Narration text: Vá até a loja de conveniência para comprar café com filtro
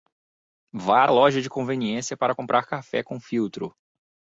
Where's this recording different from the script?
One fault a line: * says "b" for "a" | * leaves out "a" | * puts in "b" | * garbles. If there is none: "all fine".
* leaves out "até"